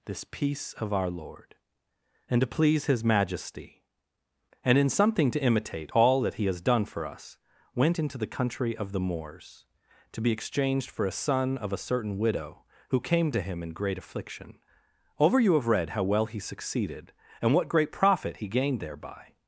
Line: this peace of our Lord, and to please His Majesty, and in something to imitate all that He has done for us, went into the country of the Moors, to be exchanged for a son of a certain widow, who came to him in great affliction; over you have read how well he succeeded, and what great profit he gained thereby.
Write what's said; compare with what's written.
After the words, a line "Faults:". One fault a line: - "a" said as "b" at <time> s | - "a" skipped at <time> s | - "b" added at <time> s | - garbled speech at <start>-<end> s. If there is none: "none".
this peace of our Lord, and to please His Majesty, and in something to imitate all that He has done for us, went into the country of the Moors, to be exchanged for a son of a certain widow, who came to him in great affliction; over you have read how well he succeeded, and what great profit he gained thereby.
Faults:
none